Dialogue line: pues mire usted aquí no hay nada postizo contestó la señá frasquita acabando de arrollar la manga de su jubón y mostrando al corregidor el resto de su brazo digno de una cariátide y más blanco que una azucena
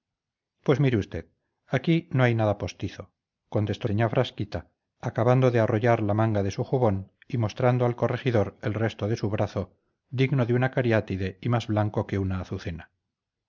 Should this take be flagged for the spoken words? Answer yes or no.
yes